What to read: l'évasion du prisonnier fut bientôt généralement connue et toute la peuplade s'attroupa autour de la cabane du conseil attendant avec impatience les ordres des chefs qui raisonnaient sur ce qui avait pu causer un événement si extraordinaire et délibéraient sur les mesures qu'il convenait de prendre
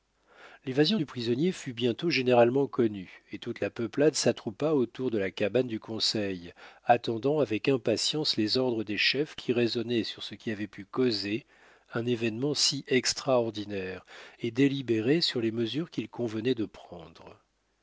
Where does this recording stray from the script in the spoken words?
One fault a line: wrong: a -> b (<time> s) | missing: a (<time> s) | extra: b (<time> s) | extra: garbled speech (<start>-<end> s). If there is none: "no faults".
no faults